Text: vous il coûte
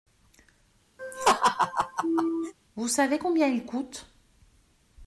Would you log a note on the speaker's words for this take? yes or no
yes